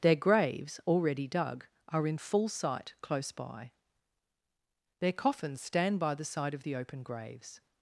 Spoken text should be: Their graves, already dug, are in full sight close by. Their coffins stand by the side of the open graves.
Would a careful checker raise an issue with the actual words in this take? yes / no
no